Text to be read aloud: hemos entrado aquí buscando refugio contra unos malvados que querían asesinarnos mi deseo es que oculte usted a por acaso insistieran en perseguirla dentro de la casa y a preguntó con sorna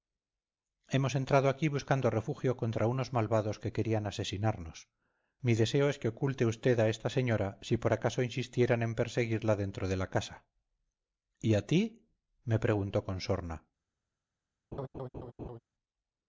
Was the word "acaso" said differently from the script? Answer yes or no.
no